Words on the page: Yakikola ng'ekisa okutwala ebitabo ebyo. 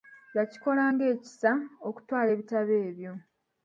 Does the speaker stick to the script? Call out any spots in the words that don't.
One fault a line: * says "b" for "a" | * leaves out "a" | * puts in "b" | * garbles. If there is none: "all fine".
all fine